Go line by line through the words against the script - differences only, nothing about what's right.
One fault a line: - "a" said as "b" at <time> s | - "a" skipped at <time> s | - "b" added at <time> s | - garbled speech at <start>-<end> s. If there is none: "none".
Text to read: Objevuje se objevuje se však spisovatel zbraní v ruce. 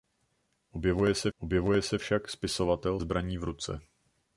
none